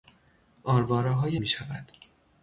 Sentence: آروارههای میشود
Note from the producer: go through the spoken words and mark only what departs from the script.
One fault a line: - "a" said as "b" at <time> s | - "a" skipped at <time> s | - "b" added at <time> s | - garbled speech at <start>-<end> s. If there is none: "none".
none